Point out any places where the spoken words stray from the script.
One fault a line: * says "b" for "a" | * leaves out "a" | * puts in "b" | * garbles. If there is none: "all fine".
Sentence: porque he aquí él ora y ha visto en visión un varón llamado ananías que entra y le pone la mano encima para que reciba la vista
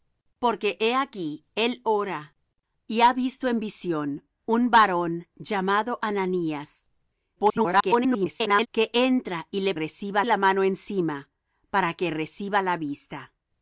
* garbles
* says "reciba" for "pone"